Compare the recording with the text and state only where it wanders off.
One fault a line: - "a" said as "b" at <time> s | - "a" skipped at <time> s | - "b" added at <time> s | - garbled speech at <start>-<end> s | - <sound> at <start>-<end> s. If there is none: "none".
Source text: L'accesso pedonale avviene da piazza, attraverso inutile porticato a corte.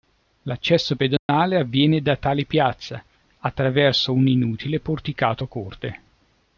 - dropout at 1.2-1.3 s
- "tale" added at 2.2 s
- "un" added at 4.1 s